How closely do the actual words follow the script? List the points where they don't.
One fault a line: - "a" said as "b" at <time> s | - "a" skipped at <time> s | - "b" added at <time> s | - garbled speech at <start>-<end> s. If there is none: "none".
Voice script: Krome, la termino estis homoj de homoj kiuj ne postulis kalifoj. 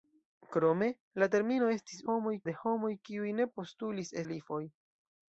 none